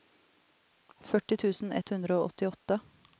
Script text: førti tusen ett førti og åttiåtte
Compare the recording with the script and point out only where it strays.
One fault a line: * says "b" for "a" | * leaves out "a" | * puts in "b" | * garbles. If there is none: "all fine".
* says "hundre" for "førti"